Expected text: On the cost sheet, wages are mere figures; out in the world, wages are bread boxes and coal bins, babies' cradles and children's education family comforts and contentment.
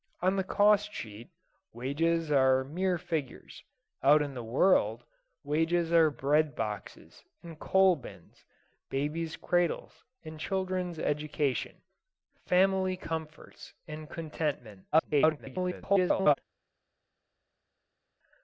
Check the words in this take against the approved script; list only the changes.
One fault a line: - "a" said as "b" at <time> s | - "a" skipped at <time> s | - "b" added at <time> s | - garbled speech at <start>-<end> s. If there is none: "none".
- garbled speech at 14.9-16.4 s